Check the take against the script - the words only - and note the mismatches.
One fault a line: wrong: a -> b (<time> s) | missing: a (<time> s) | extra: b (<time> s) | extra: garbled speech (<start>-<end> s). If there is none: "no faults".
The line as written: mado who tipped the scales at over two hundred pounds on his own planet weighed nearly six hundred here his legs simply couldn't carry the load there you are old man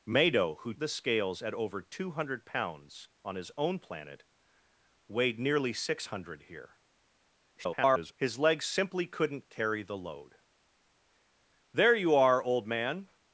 missing: tipped (0.7 s)
extra: garbled speech (7.6-8.1 s)